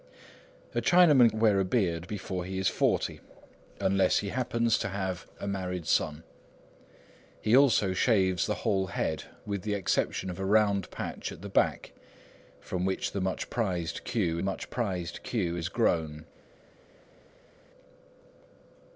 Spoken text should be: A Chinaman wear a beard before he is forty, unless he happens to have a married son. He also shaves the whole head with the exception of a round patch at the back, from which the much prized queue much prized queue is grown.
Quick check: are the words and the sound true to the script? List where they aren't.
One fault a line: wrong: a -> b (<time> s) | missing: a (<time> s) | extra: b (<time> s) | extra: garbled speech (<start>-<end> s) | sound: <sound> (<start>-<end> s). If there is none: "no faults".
no faults